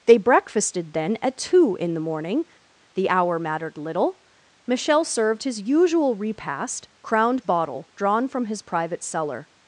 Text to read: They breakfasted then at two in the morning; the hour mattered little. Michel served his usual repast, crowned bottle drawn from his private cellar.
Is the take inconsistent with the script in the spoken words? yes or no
no